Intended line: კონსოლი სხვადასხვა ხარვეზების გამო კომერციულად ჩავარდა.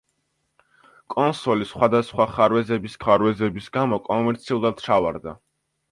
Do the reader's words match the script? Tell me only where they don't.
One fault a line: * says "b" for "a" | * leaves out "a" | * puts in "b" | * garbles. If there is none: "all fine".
* puts in "ხარვეზების"